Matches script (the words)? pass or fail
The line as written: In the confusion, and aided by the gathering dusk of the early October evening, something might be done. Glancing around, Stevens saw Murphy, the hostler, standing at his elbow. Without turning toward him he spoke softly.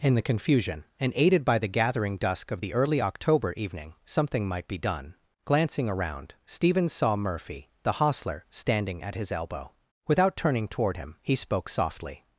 pass